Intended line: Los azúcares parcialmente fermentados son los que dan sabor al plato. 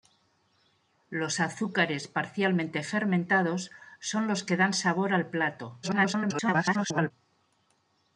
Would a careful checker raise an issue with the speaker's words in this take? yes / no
yes